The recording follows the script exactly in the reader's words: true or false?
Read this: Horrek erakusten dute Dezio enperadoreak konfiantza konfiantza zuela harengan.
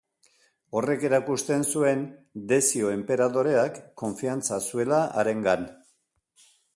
false